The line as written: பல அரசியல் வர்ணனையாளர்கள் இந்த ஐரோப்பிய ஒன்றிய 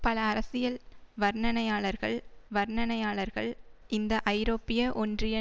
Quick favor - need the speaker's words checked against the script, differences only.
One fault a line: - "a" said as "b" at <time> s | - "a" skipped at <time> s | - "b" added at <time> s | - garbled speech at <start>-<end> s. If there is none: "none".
- "வர்ணனையாளர்கள்" added at 2.5 s